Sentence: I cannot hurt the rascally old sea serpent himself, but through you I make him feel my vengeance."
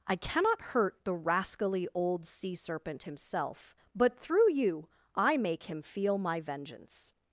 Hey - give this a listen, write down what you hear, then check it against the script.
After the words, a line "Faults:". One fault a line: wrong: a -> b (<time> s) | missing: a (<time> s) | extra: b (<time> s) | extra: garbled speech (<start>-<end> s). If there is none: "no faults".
I cannot hurt the rascally old sea serpent himself, but through you I make him feel my vengeance."
Faults:
no faults